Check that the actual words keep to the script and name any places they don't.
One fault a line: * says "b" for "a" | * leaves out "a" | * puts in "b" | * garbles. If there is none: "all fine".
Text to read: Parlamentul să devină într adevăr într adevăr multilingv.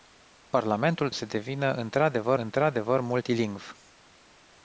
all fine